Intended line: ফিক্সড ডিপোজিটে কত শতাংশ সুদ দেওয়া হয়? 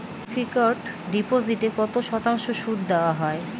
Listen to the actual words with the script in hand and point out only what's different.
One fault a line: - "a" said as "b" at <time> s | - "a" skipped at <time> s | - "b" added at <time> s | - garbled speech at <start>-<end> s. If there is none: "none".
none